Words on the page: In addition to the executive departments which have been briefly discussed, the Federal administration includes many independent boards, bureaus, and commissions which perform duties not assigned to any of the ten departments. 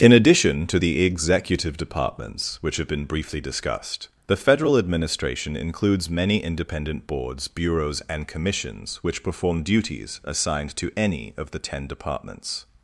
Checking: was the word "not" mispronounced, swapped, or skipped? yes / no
yes